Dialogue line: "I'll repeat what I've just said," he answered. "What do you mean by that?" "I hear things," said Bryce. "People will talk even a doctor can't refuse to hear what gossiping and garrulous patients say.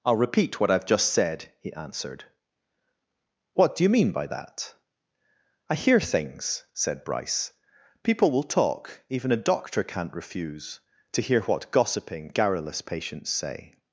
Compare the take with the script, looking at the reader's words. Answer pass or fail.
fail